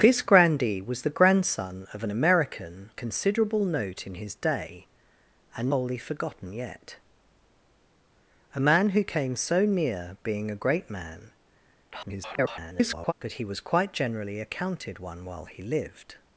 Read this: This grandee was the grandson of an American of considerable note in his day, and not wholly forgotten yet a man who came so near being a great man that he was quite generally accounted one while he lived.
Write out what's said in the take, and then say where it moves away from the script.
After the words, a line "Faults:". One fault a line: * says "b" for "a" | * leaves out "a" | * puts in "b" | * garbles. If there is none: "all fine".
This grandee was the grandson of an American considerable note in his day, and wholly forgotten yet a man who came so near being a great man [garbled] that he was quite generally accounted one while he lived.
Faults:
* leaves out "of"
* leaves out "not"
* garbles